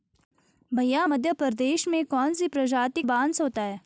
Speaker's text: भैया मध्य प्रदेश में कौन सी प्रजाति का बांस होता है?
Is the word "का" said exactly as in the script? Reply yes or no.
no